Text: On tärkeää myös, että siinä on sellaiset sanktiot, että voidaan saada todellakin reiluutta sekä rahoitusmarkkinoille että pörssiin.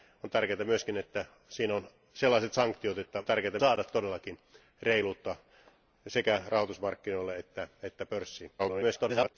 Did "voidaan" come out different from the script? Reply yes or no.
yes